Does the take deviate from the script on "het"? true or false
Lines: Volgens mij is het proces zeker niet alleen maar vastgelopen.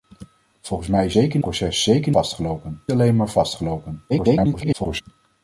true